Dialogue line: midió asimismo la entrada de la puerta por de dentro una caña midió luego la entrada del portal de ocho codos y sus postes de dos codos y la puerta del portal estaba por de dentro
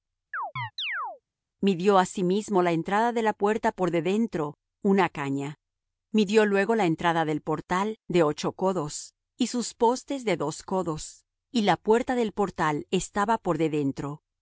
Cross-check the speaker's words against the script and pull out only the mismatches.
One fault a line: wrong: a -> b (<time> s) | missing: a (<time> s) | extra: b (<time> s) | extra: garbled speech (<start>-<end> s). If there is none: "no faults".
no faults